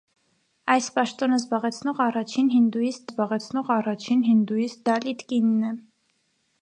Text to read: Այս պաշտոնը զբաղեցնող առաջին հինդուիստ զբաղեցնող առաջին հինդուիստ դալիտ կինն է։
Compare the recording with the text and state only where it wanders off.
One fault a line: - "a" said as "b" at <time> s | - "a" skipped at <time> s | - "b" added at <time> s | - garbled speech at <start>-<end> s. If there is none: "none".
none